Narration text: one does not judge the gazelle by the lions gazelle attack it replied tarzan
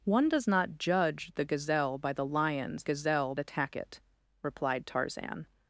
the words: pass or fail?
pass